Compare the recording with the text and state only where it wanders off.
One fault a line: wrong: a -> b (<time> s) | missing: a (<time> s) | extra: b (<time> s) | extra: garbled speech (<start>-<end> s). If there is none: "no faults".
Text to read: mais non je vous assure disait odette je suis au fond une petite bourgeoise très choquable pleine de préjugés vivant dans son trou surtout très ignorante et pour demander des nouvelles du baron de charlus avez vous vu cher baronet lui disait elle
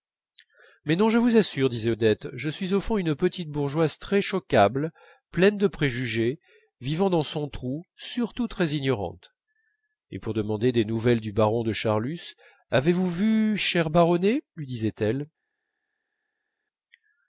no faults